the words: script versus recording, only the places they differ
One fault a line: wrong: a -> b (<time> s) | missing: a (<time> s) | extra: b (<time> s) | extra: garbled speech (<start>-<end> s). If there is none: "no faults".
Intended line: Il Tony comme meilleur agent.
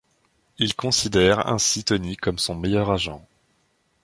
extra: considère ainsi (0.8 s)
extra: son (2.4 s)